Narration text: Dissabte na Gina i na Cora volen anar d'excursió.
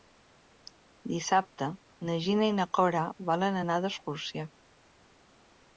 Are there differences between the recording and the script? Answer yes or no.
no